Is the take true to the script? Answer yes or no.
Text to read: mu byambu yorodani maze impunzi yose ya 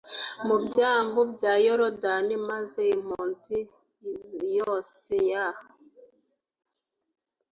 no